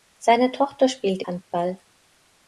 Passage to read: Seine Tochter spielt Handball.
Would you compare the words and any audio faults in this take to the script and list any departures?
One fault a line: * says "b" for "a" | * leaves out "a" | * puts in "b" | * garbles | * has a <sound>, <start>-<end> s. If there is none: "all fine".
all fine